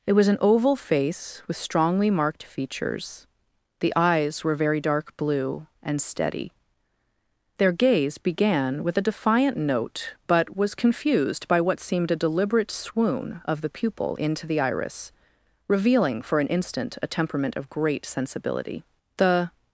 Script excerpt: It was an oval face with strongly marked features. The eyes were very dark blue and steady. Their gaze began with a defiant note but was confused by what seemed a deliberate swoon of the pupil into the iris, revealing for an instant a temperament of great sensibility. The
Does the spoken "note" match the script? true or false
true